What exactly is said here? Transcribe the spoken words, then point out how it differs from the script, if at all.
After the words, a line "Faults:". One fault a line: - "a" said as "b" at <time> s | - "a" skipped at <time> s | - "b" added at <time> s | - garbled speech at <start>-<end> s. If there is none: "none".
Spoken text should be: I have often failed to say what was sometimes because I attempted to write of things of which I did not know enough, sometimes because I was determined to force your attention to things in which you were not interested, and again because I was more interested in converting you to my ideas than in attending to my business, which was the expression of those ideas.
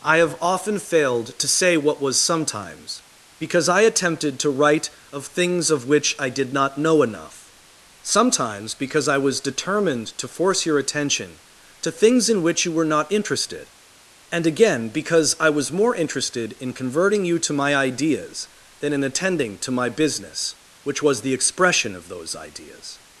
I have often failed to say what was sometimes because I attempted to write of things of which I did not know enough, sometimes because I was determined to force your attention to things in which you were not interested, and again because I was more interested in converting you to my ideas than in attending to my business, which was the expression of those ideas.
Faults:
none